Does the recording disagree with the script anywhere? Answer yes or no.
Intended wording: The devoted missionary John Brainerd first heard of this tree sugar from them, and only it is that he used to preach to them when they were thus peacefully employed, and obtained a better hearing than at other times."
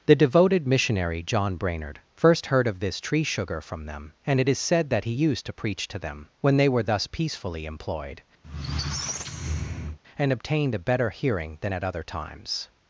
yes